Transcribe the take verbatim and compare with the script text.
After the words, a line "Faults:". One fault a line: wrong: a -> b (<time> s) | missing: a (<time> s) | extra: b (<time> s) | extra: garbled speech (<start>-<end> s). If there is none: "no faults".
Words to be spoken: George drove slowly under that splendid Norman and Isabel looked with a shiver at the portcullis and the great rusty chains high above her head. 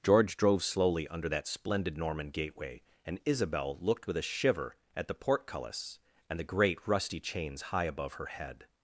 George drove slowly under that splendid Norman gateway, and Isabel looked with a shiver at the portcullis and the great rusty chains high above her head.
Faults:
extra: gateway (2.3 s)